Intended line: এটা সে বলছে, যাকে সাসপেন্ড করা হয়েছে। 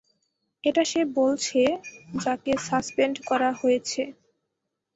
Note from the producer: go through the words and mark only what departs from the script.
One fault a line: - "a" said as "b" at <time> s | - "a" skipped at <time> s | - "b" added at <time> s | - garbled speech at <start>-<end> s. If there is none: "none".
none